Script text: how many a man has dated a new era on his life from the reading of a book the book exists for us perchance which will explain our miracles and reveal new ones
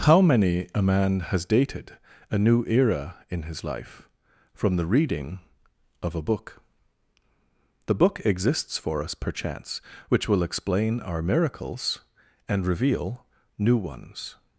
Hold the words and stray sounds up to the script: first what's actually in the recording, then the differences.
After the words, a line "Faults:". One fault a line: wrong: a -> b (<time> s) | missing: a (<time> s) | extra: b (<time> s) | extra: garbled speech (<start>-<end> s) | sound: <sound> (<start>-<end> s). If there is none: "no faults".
how many a man has dated a new era in his life from the reading of a book the book exists for us perchance which will explain our miracles and reveal new ones
Faults:
wrong: on -> in (3.3 s)